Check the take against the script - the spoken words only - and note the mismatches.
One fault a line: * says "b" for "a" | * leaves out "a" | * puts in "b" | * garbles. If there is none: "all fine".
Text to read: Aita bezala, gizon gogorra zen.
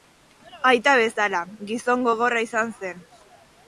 * puts in "izan"